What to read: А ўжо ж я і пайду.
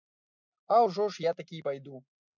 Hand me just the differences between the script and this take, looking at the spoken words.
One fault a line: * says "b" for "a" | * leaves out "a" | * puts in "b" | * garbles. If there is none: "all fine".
* puts in "такі"